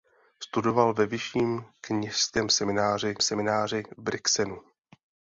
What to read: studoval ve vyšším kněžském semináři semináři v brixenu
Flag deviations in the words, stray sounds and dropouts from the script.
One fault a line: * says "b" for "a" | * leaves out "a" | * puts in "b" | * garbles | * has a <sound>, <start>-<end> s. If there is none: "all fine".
all fine